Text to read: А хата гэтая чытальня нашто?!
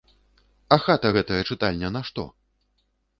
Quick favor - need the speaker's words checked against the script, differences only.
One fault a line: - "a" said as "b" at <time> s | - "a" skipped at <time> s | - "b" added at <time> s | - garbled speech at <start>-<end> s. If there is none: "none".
none